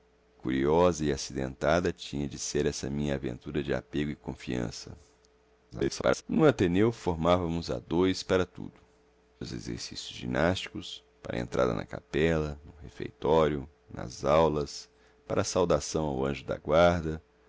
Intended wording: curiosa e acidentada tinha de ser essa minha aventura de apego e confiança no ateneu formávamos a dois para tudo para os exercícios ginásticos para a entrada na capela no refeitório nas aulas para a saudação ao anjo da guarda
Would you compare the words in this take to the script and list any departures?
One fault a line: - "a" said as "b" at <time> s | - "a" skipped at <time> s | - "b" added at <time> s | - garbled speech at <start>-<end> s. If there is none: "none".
- garbled speech at 5.7-6.2 s
- "para" skipped at 8.7 s